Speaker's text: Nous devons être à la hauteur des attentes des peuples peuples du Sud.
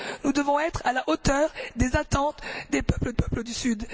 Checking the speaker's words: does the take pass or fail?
pass